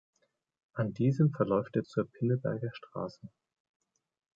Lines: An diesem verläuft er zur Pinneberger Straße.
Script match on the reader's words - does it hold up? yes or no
yes